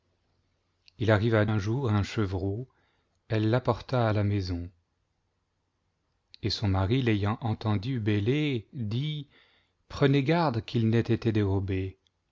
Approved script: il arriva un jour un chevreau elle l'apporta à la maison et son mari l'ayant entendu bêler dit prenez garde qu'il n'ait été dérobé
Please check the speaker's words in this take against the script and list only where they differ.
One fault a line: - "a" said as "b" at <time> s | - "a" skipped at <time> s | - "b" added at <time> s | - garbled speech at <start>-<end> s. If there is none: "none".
none